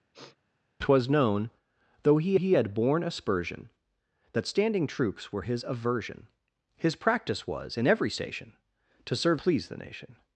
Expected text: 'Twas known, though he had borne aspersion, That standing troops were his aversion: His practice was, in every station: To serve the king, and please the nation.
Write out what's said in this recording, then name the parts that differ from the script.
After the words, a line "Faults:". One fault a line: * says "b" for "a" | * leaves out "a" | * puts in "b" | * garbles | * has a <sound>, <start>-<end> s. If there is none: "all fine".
'Twas known, though he he had borne aspersion, That standing troops were his aversion: His practice was, in every station: To serve please the nation.
Faults:
* has a sniff, 0.1-0.4 s
* puts in "he"
* leaves out "the king and"